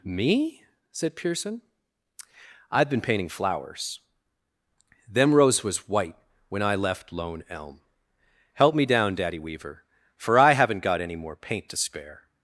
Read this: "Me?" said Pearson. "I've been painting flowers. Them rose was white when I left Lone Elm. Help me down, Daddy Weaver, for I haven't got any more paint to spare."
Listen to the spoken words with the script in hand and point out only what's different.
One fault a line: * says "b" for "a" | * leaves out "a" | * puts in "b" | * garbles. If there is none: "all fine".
all fine